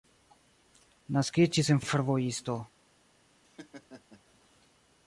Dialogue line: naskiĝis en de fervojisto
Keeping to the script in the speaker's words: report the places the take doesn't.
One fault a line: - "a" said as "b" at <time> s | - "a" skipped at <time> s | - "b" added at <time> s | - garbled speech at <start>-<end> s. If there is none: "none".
none